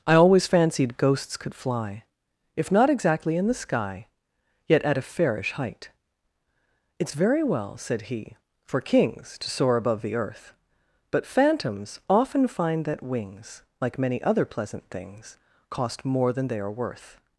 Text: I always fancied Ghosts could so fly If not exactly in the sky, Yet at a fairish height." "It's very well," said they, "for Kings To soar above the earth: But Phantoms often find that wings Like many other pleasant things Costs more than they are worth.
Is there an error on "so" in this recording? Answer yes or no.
yes